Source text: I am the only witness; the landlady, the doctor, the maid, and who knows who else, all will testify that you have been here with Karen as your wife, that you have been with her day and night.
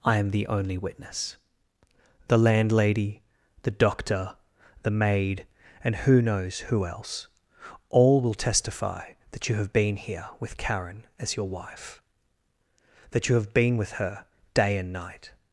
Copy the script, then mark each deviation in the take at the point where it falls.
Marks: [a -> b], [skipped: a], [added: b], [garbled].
I am the only witness; the landlady, the doctor, the maid, and who knows who else, all will testify that you have been here with Karen as your wife, that you have been with her day and night.